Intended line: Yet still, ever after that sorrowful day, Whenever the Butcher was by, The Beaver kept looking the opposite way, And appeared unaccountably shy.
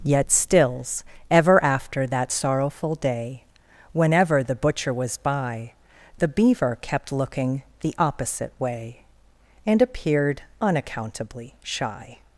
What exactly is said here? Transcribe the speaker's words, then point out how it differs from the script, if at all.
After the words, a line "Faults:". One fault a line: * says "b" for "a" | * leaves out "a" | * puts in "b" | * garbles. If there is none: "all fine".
Yet stills, ever after that sorrowful day, Whenever the Butcher was by, The Beaver kept looking the opposite way, And appeared unaccountably shy.
Faults:
* says "stills" for "still"